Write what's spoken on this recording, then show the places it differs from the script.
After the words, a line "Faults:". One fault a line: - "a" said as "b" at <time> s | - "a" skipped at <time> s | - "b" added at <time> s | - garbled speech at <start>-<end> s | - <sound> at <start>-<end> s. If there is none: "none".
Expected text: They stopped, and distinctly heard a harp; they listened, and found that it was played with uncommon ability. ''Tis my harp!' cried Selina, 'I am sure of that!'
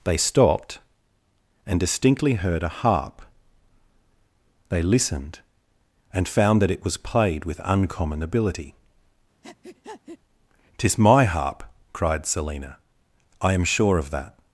They stopped, and distinctly heard a harp; they listened, and found that it was played with uncommon ability. ''Tis my harp!' cried Selina, 'I am sure of that!'
Faults:
- breath at 9.4-10.2 s